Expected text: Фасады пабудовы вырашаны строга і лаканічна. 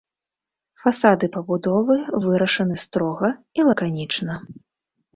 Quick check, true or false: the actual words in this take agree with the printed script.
true